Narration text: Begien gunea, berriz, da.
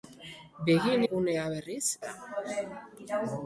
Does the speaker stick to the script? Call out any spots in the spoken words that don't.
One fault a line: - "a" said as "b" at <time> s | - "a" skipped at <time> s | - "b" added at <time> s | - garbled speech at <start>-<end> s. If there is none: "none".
none